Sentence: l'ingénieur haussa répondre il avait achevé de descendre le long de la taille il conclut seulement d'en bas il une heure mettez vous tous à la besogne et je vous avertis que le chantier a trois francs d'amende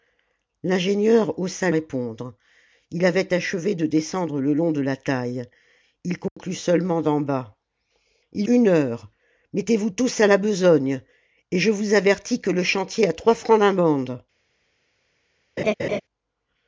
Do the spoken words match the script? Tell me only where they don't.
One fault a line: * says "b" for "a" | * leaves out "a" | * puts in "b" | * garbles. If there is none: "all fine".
all fine